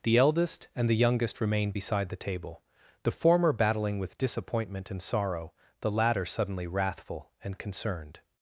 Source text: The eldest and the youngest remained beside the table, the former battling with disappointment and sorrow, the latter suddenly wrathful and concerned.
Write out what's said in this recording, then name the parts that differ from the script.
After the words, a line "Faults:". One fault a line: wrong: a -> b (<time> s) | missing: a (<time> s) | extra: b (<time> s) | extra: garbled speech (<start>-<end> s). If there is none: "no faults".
The eldest and the youngest remained beside the table, the former battling with disappointment and sorrow, the latter suddenly wrathful and concerned.
Faults:
no faults